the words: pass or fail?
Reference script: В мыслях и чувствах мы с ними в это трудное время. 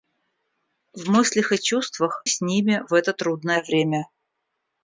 fail